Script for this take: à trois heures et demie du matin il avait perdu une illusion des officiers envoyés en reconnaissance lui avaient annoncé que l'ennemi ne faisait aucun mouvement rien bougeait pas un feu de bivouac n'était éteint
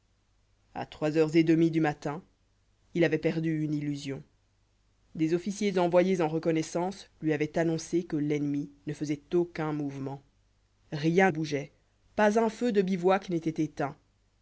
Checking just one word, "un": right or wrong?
right